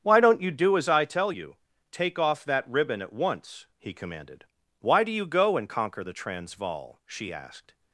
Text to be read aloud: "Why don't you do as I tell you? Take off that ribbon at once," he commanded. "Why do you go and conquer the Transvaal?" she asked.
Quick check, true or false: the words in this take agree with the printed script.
true